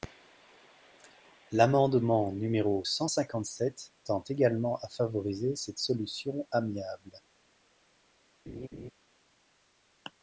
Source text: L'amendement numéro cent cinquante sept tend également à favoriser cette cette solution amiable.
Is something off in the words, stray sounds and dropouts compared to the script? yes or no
yes